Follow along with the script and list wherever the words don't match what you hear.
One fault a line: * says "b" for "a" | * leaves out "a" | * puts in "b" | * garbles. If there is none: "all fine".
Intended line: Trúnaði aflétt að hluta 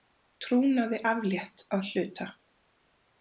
all fine